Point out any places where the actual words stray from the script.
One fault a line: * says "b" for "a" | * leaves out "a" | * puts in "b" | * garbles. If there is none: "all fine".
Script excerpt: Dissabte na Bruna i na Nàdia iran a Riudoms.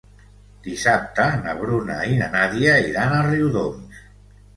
all fine